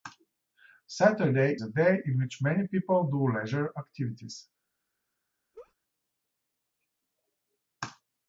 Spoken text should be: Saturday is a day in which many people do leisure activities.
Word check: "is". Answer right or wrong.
wrong